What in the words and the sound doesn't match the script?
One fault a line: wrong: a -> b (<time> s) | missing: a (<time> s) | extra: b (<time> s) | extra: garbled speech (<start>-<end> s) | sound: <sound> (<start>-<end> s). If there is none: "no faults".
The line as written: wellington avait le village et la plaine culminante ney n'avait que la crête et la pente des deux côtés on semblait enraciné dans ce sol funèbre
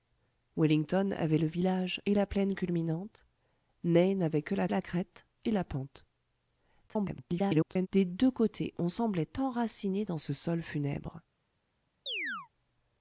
extra: la (4.7 s)
extra: garbled speech (6.9-7.9 s)
sound: chirp (12.1-12.5 s)